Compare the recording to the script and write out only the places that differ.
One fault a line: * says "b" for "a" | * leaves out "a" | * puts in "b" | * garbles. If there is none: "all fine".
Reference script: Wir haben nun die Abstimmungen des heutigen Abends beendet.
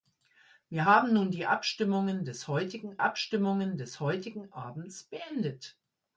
* puts in "Abstimmungen des heutigen"